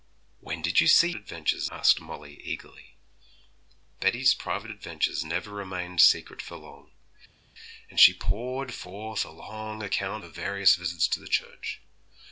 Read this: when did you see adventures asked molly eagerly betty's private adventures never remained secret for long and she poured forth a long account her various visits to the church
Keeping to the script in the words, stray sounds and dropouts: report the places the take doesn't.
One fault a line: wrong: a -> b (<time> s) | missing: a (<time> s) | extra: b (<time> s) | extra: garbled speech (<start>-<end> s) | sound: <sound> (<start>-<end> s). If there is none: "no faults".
no faults